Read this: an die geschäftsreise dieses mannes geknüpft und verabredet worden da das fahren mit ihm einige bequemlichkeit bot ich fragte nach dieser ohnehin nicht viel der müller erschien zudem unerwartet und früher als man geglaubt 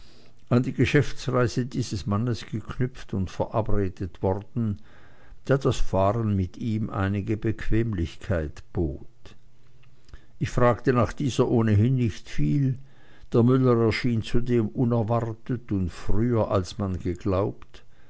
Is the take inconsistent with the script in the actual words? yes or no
no